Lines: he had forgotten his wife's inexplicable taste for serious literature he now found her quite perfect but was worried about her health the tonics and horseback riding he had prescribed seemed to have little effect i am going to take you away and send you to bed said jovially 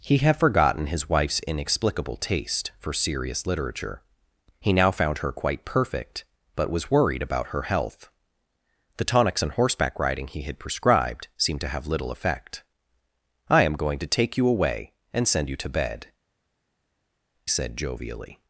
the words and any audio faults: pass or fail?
pass